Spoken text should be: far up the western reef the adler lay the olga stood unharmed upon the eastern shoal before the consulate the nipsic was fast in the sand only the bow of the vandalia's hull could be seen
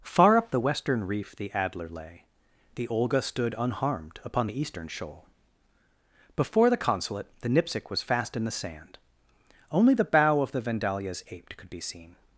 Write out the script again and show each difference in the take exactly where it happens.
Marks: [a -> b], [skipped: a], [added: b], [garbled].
far up the western reef the adler lay the olga stood unharmed upon the eastern shoal before the consulate the nipsic was fast in the sand only the bow of the vandalia's [hull -> aped] could be seen